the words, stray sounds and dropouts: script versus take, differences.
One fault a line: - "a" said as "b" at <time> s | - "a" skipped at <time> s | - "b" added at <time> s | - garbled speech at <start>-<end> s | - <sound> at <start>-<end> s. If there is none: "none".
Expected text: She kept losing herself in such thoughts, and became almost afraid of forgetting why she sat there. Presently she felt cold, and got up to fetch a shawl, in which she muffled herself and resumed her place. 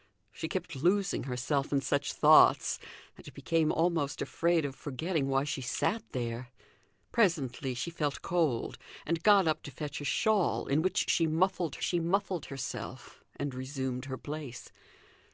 - "she muffled" added at 11.8 s